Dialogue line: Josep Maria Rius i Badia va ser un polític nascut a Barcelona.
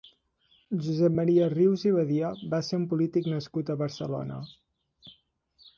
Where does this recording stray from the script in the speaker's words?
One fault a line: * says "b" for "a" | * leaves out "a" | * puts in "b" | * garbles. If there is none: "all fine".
all fine